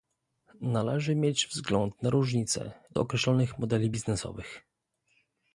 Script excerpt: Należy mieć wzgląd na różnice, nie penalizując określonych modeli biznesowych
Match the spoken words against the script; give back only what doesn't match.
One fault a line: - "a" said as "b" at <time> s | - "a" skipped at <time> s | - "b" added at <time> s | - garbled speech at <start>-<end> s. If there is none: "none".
- "nie penalizując" skipped at 2.7 s